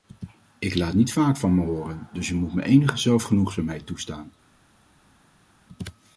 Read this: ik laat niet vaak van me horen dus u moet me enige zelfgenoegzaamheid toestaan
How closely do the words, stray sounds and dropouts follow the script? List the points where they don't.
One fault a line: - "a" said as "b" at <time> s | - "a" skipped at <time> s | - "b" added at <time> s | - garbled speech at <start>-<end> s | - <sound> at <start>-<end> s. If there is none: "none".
none